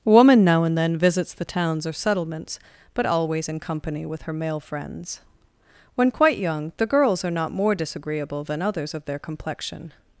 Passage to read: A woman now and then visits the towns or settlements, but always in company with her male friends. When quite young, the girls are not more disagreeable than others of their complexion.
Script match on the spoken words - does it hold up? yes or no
no